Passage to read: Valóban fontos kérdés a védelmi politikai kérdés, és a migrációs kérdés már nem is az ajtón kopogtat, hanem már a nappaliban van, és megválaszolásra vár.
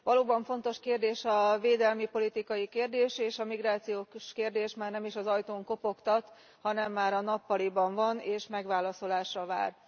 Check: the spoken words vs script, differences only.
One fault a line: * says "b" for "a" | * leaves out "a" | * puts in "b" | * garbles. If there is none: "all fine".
all fine